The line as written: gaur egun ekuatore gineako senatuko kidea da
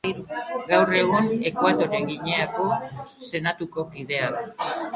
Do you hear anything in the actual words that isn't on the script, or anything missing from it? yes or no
no